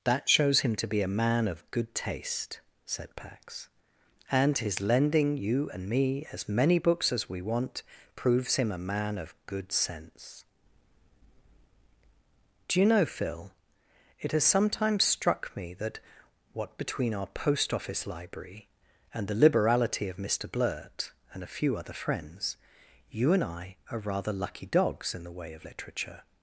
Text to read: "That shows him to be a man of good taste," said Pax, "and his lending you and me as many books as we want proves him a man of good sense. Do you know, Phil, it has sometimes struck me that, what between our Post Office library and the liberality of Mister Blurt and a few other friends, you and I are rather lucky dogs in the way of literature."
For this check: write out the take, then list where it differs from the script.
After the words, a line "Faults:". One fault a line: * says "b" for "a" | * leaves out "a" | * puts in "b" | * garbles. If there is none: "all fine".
"That shows him to be a man of good taste," said Pax, "and his lending you and me as many books as we want proves him a man of good sense. Do you know, Phil, it has sometimes struck me that, what between our Post Office library and the liberality of Mister Blurt and a few other friends, you and I are rather lucky dogs in the way of literature."
Faults:
all fine